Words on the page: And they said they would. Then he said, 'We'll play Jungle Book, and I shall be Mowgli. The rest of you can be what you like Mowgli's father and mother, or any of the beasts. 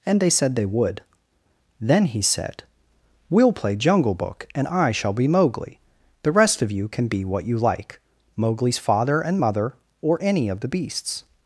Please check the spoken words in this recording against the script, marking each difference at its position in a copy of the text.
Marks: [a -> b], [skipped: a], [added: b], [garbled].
And they said they would. Then he said, 'We'll play Jungle Book, and I shall be Mowgli. The rest of you can be what you like Mowgli's father and mother, or any of the beasts.